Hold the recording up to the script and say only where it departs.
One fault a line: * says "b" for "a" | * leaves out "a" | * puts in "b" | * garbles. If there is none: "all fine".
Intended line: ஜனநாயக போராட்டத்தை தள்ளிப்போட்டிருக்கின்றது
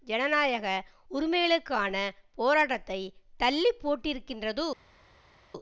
* puts in "உரிமைகளுக்கான"